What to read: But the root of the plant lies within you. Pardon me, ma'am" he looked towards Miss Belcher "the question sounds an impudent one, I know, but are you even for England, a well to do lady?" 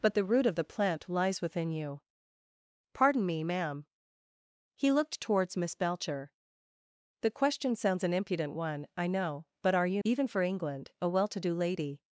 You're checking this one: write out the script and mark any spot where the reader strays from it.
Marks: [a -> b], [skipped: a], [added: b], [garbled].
But the root of the plant lies within you. Pardon me, ma'am" he looked towards Miss Belcher "the question sounds an impudent one, I know, but are you even for England, a well to do lady?"